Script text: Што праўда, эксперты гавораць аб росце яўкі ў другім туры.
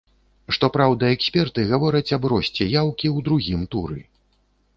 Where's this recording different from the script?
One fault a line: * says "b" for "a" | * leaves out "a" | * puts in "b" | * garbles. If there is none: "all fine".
all fine